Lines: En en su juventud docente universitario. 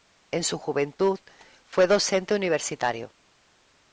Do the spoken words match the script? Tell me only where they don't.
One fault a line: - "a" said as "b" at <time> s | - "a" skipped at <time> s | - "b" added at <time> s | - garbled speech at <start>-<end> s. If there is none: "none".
- "en" skipped at 0.4 s
- "fue" added at 1.6 s